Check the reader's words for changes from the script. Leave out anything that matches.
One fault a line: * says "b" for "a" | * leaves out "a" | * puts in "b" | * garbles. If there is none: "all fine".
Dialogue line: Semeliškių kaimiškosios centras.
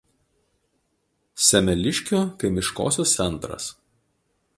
all fine